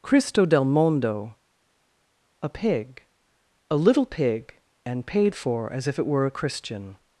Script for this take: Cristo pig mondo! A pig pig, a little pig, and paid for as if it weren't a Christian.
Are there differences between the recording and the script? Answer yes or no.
yes